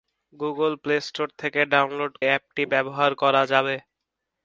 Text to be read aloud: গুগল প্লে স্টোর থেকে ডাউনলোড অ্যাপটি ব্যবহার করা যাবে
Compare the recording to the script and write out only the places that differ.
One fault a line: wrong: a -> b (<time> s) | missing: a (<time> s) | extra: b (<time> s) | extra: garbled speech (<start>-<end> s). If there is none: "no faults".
no faults